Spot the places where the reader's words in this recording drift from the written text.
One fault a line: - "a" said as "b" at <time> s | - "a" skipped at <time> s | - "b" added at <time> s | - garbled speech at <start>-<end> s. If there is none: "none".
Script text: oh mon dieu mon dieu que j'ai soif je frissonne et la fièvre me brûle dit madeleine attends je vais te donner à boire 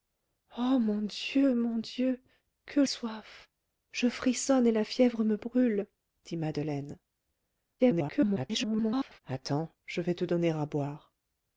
- "j'ai" skipped at 2.8 s
- garbled speech at 7.8-9.2 s